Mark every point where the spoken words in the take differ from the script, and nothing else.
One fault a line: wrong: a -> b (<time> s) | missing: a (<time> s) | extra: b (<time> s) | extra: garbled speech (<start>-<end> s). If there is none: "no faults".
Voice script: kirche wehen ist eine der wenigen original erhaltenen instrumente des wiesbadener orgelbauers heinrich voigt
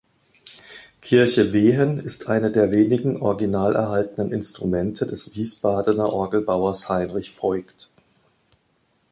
no faults